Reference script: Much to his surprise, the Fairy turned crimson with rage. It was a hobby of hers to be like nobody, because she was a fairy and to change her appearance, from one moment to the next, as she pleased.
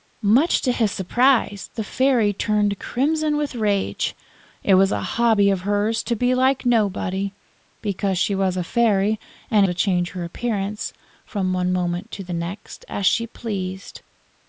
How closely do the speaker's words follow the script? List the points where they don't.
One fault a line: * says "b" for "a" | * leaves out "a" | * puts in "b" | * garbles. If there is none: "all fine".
all fine